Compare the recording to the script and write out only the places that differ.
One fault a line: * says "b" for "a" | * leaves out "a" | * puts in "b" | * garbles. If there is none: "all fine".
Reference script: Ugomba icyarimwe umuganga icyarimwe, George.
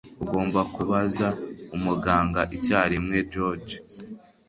* says "kubaza" for "icyarimwe"